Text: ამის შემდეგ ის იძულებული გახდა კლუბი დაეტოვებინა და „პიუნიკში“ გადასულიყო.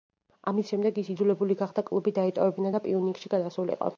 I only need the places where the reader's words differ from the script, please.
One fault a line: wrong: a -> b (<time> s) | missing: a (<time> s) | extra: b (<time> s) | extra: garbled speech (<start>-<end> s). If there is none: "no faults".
no faults